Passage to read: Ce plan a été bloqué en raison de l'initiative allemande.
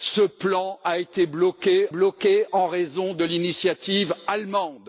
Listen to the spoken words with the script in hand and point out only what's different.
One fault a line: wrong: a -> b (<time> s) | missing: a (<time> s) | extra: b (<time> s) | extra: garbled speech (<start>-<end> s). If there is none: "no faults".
extra: bloqué (1.9 s)